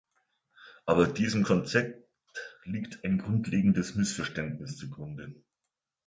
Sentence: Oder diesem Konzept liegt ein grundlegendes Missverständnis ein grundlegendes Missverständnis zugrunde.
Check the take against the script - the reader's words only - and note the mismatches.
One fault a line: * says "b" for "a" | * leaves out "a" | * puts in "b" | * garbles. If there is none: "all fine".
* says "Aber" for "Oder"
* leaves out "ein grundlegendes Missverständnis"